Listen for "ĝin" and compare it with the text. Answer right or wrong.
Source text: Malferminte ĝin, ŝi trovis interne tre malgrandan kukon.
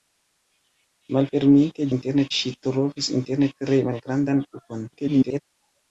wrong